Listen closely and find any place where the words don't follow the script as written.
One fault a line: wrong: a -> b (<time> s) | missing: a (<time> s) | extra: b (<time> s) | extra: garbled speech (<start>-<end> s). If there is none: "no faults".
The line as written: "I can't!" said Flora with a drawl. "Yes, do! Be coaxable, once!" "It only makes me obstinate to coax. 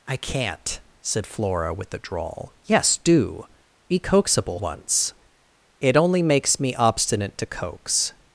no faults